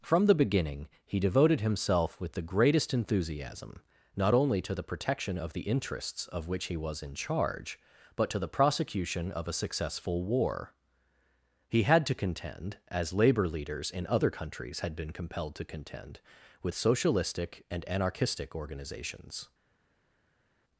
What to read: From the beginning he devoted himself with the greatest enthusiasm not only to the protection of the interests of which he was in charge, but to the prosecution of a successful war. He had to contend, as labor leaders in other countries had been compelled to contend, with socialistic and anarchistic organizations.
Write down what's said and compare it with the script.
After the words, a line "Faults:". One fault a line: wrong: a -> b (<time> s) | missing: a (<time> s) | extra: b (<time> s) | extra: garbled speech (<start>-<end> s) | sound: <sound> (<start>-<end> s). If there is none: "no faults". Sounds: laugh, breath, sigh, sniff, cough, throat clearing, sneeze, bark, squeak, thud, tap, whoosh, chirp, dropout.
From the beginning he devoted himself with the greatest enthusiasm not only to the protection of the interests of which he was in charge, but to the prosecution of a successful war. He had to contend, as labor leaders in other countries had been compelled to contend, with socialistic and anarchistic organizations.
Faults:
no faults